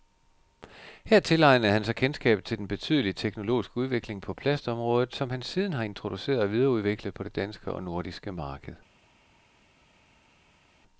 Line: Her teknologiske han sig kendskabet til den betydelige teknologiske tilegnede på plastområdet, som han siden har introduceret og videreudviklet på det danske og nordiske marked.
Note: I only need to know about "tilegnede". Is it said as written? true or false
false